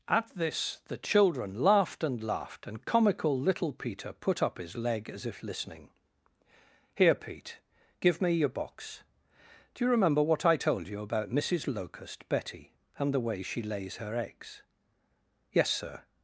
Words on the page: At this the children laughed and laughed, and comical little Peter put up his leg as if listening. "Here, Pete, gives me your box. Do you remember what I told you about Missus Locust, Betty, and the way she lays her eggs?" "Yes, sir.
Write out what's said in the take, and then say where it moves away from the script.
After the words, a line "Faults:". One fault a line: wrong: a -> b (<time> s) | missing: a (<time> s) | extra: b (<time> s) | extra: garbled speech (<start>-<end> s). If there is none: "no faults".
At this the children laughed and laughed, and comical little Peter put up his leg as if listening. "Here, Pete, give me your box. Do you remember what I told you about Missus Locust, Betty, and the way she lays her eggs?" "Yes, sir.
Faults:
wrong: gives -> give (8.0 s)